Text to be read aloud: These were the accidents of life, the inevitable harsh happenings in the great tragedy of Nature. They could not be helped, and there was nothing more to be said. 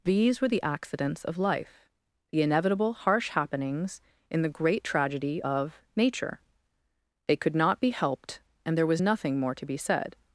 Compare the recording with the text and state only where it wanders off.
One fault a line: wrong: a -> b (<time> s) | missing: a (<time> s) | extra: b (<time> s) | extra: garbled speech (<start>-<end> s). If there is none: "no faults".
no faults